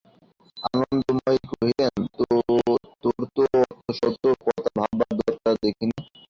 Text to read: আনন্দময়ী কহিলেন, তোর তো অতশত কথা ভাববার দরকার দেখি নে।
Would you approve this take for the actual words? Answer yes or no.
yes